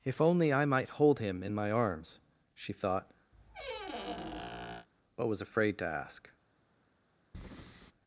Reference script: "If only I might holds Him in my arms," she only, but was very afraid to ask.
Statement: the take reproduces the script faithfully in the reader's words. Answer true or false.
false